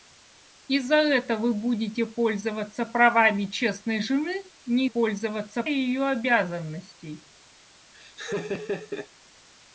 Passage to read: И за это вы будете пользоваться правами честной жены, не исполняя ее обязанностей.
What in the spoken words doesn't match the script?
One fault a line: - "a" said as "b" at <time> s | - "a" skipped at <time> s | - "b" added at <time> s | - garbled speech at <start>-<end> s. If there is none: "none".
- "исполняя" said as "пользоваться" at 4.8 s